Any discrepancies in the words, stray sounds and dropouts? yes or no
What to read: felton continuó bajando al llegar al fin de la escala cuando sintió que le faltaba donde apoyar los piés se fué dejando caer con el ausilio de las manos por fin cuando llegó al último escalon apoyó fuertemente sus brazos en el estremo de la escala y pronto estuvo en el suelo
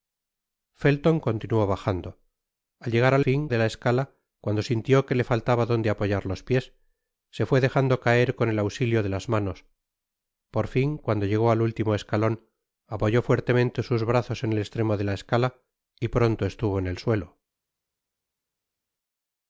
no